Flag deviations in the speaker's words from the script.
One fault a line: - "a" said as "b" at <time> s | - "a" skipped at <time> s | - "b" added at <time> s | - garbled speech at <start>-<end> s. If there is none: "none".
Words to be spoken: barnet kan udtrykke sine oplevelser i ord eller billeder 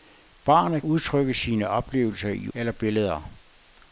- "kan" skipped at 0.8 s
- "ord" skipped at 2.5 s